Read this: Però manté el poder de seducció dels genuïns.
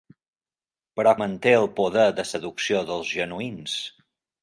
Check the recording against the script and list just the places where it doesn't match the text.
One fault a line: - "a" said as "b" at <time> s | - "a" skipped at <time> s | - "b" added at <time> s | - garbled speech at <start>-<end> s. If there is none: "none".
none